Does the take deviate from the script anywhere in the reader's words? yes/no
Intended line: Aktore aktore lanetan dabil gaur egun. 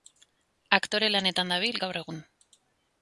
yes